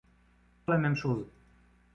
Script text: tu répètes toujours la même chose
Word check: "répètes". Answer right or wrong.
wrong